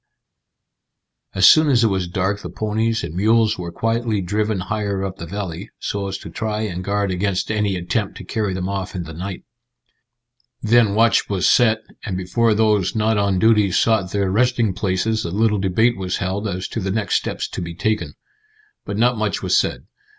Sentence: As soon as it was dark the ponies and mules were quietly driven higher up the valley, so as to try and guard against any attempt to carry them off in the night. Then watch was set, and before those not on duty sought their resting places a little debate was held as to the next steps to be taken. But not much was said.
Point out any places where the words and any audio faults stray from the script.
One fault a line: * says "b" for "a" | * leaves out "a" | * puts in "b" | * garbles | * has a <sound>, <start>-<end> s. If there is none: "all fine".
all fine